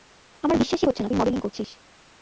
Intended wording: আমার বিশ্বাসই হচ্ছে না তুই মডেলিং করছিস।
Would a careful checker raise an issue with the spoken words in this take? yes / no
no